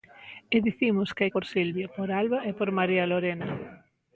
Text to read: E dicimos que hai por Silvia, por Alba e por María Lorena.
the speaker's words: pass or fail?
pass